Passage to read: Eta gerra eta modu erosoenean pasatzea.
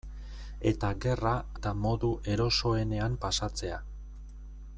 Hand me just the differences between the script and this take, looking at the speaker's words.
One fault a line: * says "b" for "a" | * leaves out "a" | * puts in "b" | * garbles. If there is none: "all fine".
all fine